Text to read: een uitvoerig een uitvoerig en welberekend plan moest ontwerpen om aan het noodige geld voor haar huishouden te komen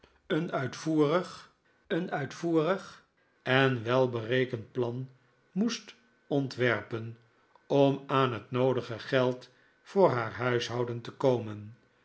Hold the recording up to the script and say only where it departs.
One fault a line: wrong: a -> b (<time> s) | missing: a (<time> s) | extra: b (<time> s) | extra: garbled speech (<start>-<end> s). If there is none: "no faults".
no faults